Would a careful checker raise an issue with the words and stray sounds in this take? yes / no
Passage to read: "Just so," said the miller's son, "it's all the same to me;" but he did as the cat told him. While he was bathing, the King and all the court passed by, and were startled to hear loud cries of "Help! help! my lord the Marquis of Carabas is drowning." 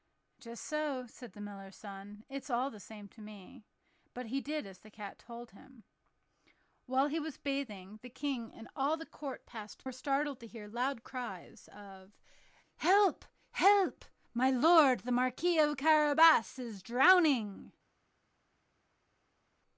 yes